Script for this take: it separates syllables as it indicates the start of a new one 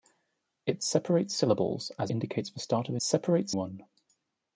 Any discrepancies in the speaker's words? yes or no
yes